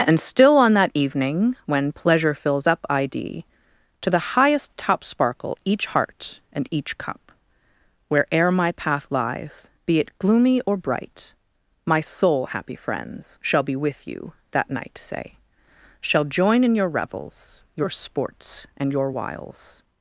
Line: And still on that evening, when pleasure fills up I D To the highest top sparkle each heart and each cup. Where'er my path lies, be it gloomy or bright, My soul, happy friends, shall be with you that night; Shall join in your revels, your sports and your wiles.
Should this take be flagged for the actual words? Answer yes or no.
yes